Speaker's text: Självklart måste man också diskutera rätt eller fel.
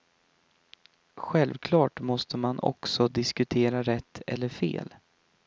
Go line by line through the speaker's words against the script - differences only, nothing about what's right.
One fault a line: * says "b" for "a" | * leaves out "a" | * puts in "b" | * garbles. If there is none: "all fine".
all fine